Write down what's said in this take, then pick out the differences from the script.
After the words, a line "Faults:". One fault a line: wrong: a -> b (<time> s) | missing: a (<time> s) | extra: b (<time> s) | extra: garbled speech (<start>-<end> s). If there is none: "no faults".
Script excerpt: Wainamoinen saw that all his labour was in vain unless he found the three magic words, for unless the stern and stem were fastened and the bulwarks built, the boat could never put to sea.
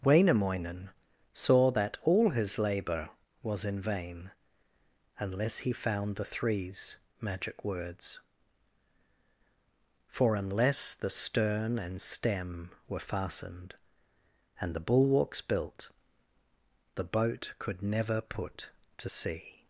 Wainamoinen saw that all his labour was in vain unless he found the threes magic words, for unless the stern and stem were fastened and the bulwarks built, the boat could never put to sea.
Faults:
wrong: three -> threes (6.2 s)